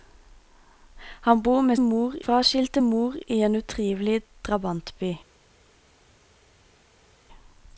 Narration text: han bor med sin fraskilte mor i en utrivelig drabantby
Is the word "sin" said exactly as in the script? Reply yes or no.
no